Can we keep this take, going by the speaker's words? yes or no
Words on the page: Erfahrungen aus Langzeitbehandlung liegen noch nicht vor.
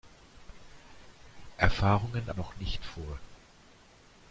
no